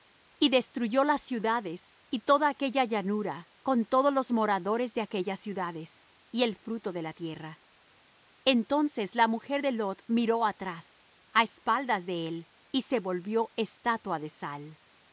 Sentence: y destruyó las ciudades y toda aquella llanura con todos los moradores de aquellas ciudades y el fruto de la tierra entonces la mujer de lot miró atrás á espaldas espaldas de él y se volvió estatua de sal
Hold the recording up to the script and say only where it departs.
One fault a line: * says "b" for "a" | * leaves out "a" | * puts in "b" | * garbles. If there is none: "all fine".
* leaves out "espaldas"